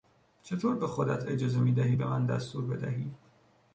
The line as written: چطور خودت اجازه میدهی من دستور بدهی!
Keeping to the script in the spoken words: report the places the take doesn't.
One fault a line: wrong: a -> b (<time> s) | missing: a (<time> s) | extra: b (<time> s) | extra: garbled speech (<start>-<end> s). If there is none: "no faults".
extra: به (0.8 s)
extra: به (1.9 s)